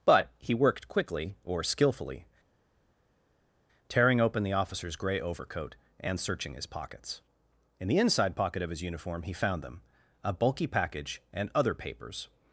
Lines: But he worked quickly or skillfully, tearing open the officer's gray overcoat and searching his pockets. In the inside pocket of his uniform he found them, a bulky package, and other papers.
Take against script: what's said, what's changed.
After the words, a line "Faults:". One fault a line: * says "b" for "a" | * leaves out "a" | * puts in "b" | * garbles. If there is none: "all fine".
But he worked quickly or skillfully, tearing open the officer's gray overcoat and searching his pockets. In the inside pocket of his uniform he found them, a bulky package, and other papers.
Faults:
all fine